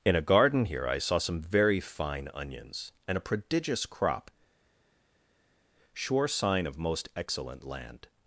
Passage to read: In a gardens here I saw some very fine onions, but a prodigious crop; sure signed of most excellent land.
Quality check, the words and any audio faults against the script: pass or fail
fail